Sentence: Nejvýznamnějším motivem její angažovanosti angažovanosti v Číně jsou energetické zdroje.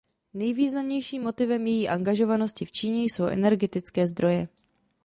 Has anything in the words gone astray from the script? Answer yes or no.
yes